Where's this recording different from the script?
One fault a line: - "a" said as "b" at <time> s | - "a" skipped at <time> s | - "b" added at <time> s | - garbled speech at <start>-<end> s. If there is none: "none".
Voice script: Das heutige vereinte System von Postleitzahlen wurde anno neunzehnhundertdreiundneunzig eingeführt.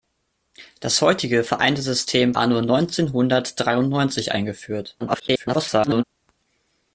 - "von Postleitzahlen wurde" skipped at 2.3 s
- garbled speech at 5.0-6.0 s